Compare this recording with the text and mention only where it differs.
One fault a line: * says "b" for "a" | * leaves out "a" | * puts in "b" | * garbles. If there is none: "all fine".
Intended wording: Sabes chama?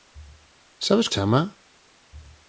all fine